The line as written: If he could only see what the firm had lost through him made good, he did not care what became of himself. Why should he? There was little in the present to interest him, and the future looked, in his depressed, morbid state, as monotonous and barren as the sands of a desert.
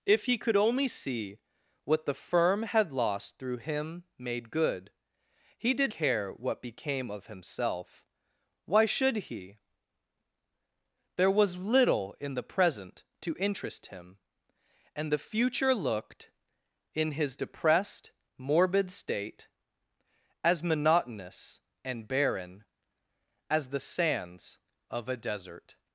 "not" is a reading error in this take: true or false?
true